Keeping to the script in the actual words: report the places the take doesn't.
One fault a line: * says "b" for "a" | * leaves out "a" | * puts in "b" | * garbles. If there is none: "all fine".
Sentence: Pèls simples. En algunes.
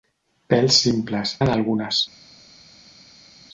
all fine